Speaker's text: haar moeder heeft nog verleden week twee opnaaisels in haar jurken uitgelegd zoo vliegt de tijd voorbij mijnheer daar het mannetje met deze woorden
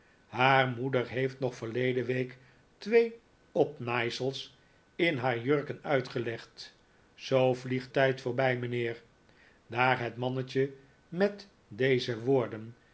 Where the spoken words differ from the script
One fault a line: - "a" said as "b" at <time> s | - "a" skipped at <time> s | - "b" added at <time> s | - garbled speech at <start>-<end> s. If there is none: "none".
- "de" skipped at 7.9 s